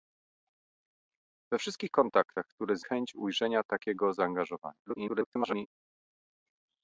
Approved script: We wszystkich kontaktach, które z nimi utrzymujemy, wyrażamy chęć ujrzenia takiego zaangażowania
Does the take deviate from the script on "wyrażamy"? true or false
true